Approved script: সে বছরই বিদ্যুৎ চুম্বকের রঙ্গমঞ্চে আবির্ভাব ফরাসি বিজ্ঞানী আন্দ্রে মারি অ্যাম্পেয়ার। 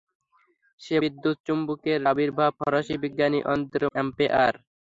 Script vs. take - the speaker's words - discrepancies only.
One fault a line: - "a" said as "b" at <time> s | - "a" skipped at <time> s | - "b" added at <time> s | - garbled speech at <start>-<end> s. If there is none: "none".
- "বছরই" skipped at 1.0 s
- "রঙ্গমঞ্চে" skipped at 2.0 s
- "মারি" skipped at 3.9 s